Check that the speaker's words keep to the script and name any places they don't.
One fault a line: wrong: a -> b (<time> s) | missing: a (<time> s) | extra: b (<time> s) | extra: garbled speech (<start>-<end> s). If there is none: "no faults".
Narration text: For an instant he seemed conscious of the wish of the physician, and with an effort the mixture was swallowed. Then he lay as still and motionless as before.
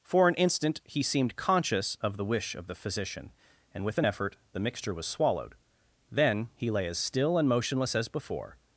no faults